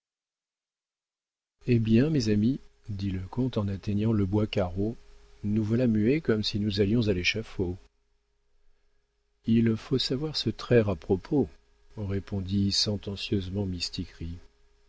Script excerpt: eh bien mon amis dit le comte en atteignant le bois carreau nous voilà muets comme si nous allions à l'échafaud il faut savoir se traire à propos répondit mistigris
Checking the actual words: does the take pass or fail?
fail